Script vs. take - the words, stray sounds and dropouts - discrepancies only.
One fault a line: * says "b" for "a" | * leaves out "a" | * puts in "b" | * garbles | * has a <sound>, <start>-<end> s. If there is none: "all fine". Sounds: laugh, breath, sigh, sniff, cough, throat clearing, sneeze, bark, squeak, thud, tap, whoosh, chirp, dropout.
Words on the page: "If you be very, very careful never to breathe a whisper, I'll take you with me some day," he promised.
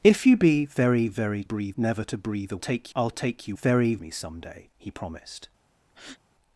* says "breathe" for "careful"
* says "take" for "whisper"
* says "very" for "with"
* has a breath, 5.9-6.2 s